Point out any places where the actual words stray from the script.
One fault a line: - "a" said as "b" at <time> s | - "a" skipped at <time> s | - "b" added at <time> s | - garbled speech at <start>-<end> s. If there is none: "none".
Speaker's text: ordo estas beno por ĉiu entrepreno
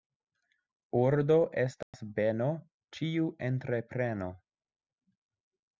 - "por" skipped at 2.5 s